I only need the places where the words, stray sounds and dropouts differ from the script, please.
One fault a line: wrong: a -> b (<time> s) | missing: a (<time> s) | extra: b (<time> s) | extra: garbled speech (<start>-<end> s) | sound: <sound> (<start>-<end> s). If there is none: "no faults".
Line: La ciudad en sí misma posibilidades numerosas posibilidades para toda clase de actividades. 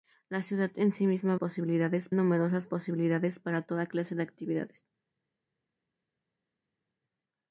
no faults